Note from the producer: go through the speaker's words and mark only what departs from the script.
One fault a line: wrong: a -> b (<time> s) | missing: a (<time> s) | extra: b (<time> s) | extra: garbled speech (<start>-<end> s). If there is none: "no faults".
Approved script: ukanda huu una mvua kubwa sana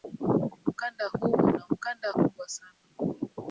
wrong: mvua -> ukanda (1.7 s)